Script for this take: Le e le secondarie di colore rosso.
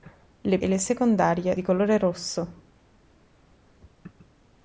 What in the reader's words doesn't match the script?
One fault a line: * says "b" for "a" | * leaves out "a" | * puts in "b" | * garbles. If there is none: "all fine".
all fine